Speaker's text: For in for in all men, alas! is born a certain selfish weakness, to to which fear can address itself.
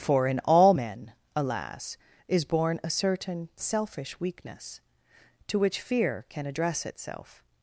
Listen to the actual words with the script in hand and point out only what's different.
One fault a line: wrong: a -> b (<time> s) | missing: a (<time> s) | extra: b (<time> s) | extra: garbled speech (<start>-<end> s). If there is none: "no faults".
missing: for in (0.4 s)
missing: to (5.6 s)